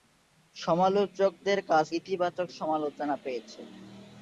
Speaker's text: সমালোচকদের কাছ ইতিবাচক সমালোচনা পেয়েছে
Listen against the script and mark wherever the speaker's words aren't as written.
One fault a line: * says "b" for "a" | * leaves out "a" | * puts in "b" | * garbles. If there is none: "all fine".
all fine